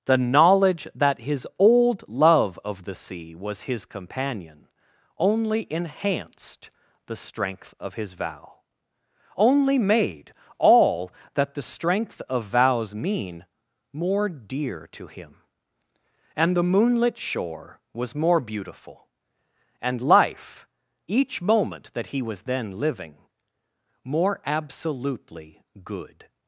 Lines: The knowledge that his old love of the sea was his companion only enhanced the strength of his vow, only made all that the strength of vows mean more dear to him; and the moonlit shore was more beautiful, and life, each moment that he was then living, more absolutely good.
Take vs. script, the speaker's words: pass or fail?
pass